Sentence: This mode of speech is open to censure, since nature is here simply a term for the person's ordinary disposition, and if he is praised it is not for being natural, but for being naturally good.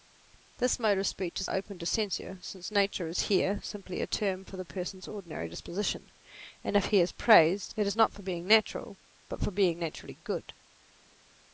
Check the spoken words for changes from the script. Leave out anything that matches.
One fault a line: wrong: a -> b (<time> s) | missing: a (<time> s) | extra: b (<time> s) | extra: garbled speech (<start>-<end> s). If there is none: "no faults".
no faults